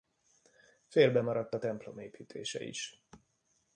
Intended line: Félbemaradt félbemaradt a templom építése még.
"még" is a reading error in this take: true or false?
true